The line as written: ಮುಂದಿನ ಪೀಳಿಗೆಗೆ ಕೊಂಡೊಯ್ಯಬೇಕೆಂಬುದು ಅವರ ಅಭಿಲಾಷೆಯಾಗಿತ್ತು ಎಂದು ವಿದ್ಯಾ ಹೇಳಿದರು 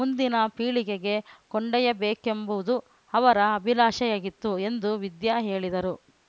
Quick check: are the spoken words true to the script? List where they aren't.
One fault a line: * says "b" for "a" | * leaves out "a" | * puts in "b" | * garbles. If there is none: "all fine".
all fine